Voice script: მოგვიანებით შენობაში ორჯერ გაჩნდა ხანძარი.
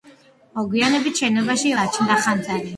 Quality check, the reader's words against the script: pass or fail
fail